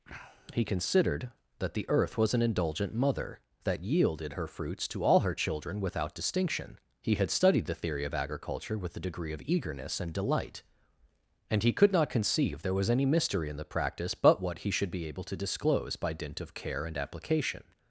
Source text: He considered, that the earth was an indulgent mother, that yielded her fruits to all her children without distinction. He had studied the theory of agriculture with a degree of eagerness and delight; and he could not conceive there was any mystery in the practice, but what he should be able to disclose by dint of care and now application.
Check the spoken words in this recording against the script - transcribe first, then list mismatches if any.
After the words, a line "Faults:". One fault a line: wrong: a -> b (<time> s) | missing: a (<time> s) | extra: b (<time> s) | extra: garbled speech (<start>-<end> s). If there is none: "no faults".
He considered, that the earth was an indulgent mother, that yielded her fruits to all her children without distinction. He had studied the theory of agriculture with a degree of eagerness and delight; and he could not conceive there was any mystery in the practice, but what he should be able to disclose by dint of care and application.
Faults:
missing: now (17.0 s)